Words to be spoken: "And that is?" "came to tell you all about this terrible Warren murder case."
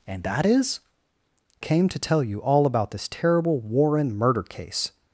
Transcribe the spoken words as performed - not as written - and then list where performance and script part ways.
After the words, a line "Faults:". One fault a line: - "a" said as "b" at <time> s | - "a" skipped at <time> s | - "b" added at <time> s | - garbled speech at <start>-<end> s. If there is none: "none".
"And that is?" "came to tell you all about this terrible Warren murder case."
Faults:
none